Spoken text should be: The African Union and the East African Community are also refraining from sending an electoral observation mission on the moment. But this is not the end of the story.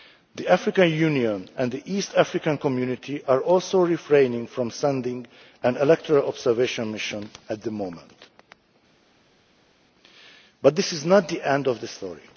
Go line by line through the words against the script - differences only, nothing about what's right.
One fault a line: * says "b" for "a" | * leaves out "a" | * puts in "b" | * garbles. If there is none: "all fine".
* says "at" for "on"